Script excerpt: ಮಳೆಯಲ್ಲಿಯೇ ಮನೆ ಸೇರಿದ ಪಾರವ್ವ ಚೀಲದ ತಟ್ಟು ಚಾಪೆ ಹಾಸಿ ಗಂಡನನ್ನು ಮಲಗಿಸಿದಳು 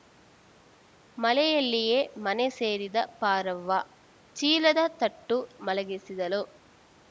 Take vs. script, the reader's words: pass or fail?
fail